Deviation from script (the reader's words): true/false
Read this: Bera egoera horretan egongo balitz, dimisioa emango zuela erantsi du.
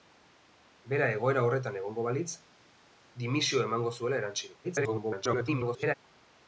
true